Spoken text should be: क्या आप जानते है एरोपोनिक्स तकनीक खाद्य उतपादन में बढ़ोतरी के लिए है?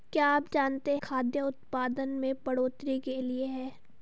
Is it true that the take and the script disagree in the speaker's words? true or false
true